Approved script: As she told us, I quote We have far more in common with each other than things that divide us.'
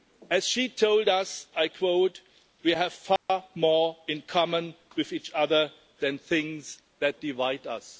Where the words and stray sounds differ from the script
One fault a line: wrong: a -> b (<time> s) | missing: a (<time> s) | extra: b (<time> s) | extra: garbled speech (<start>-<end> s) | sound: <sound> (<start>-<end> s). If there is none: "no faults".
sound: dropout (3.2-3.3 s)